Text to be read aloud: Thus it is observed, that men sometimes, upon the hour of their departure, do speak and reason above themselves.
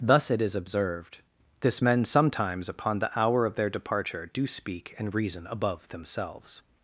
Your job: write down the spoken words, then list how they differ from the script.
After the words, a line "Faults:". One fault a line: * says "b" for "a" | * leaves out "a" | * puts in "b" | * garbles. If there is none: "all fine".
Thus it is observed, this men sometimes, upon the hour of their departure, do speak and reason above themselves.
Faults:
* says "this" for "that"